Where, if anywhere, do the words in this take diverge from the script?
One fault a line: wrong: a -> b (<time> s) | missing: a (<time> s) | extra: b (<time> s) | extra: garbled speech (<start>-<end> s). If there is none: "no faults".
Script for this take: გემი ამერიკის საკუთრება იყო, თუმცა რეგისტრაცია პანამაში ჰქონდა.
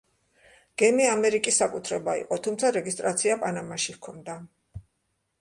no faults